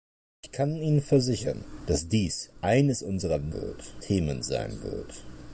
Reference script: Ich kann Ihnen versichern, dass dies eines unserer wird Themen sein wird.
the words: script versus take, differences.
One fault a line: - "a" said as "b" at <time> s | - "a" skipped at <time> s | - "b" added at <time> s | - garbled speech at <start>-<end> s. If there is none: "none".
none